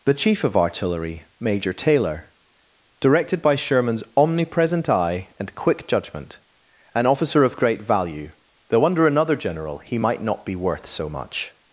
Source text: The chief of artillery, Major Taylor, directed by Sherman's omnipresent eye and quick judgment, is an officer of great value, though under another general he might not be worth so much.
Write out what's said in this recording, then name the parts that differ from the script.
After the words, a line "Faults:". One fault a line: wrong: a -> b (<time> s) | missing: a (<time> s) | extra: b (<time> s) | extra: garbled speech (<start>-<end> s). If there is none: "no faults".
The chief of artillery, Major Taylor, directed by Sherman's omnipresent eye and quick judgment, an officer of great value, though under another general he might not be worth so much.
Faults:
missing: is (6.4 s)